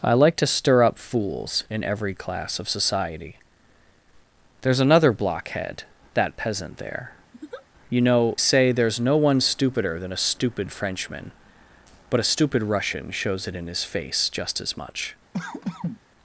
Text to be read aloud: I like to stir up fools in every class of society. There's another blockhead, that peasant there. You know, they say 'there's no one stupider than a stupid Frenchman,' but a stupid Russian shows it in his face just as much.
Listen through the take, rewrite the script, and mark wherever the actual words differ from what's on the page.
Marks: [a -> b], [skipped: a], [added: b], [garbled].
I like to stir up fools in every class of society. There's another blockhead, that peasant there. You know, [skipped: they] say 'there's no one stupider than a stupid Frenchman,' but a stupid Russian shows it in his face just as much.